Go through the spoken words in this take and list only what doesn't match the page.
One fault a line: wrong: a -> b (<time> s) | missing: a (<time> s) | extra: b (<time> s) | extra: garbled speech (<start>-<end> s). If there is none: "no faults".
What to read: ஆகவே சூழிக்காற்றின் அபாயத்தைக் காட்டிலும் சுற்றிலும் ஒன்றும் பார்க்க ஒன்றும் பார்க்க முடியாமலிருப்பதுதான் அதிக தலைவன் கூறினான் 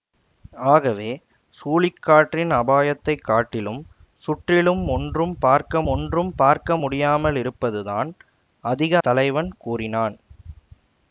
no faults